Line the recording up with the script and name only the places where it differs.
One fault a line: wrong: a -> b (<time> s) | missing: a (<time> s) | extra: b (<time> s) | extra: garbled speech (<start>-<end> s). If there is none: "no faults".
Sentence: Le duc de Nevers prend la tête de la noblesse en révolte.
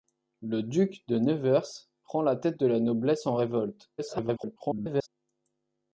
extra: garbled speech (4.0-5.1 s)